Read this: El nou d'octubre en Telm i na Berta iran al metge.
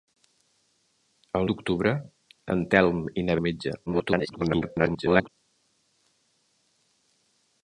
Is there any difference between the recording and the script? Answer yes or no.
yes